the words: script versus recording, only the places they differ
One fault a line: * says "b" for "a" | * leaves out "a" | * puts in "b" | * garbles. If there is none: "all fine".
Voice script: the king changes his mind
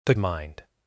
* leaves out "king changes his"